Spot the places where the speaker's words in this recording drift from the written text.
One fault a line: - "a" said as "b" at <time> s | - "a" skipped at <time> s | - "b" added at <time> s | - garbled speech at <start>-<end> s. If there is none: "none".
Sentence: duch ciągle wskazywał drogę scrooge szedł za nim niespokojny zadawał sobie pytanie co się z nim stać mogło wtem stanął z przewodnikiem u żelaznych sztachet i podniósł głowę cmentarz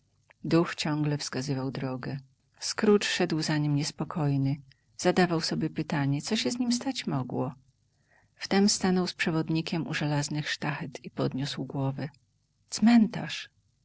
none